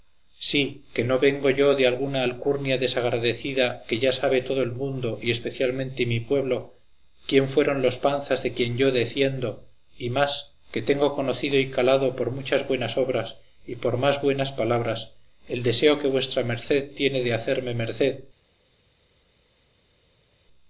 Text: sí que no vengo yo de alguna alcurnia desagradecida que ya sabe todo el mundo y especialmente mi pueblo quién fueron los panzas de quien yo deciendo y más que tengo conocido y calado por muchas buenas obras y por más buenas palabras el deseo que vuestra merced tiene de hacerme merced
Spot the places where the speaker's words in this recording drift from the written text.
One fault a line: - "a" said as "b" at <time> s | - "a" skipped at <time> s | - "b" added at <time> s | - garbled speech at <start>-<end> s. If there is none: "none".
none